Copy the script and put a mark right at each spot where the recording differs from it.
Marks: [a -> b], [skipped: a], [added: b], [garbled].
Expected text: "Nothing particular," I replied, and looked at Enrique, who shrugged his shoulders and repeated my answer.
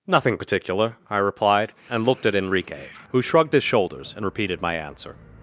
"Nothing particular," I replied, and looked at Enrique, who shrugged his shoulders and repeated my answer.